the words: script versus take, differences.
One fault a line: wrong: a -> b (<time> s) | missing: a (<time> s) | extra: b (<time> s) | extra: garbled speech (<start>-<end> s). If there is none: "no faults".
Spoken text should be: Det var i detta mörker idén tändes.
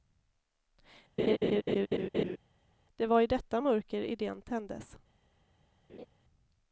no faults